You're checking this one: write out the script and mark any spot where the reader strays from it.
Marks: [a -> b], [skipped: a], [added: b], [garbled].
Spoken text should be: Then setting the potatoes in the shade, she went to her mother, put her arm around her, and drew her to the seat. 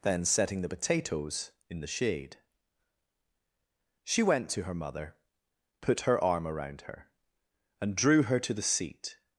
Then setting the potatoes in the shade, she went to her mother, put her arm around her, and drew her to the seat.